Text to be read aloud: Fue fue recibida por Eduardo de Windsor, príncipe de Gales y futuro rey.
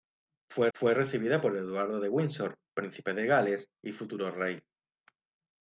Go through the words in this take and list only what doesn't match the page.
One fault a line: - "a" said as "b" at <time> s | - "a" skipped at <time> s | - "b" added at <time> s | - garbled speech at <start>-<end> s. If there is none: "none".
none